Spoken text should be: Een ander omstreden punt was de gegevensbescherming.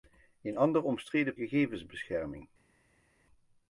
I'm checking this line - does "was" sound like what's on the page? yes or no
no